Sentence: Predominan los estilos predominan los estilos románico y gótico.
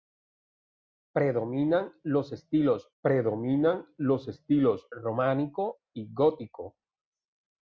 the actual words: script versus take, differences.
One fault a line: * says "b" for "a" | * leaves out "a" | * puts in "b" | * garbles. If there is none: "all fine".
all fine